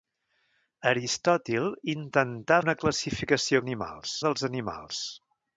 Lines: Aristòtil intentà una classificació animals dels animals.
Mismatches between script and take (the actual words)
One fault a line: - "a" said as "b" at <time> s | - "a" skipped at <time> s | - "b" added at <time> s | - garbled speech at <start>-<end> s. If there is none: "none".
none